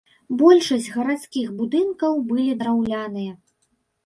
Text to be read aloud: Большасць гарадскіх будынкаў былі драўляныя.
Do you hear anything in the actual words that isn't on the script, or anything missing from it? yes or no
no